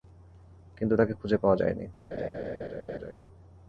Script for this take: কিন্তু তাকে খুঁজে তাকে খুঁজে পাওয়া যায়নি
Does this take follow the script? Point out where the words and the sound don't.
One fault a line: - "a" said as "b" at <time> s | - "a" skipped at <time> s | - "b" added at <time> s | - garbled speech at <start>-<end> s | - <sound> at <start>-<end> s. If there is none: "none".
- "তাকে খুঁজে" skipped at 1.4 s
- laugh at 2.1-3.1 s